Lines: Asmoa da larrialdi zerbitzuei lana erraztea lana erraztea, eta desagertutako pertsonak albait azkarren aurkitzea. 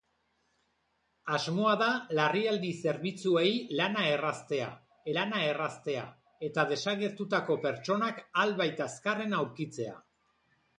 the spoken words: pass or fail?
pass